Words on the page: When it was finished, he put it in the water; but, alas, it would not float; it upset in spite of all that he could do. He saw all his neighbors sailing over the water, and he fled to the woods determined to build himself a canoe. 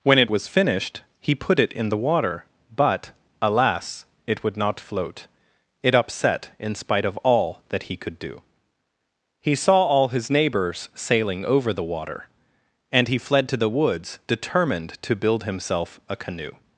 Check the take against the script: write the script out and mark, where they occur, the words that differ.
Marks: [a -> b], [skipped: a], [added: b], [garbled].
When it was finished, he put it in the water; but, alas, it would not float; it upset in spite of all that he could do. He saw all his neighbors sailing over the water, and he fled to the woods determined to build himself a canoe.